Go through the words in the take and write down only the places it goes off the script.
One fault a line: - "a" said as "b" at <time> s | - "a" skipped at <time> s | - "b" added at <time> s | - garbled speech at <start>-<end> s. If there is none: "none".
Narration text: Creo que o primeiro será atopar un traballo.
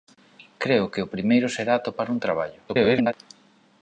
- garbled speech at 2.7-3.1 s